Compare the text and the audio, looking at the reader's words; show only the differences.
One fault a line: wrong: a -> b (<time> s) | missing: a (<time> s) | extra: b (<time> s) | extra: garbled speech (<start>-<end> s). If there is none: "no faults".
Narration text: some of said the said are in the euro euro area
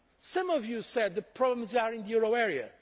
extra: you (0.7 s)
wrong: said -> problems (1.2 s)
missing: euro (2.3 s)